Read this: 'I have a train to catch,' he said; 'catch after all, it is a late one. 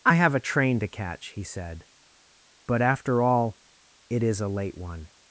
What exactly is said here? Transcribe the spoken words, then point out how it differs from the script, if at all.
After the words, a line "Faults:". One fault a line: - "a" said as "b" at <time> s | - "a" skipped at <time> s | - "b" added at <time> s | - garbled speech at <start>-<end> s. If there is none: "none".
'I have a train to catch,' he said; 'but after all, it is a late one.
Faults:
- "catch" said as "but" at 2.6 s